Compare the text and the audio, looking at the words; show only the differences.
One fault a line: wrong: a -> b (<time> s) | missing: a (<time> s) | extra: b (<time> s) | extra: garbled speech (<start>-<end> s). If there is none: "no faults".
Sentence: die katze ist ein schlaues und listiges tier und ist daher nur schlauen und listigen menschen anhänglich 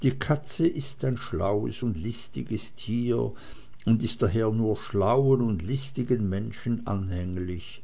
no faults